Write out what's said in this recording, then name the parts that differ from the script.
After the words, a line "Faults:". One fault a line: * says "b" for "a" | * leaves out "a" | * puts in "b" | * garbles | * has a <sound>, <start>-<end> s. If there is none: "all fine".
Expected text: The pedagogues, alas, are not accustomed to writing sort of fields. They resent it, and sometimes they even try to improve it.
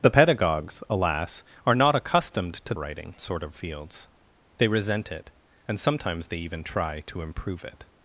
The pedagogues, alas, are not accustomed to writing sort of fields. They resent it, and sometimes they even try to improve it.
Faults:
all fine